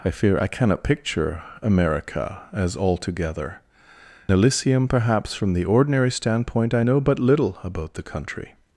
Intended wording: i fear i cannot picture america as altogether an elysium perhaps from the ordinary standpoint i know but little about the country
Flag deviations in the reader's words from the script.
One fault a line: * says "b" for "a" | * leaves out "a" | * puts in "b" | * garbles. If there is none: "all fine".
* leaves out "an"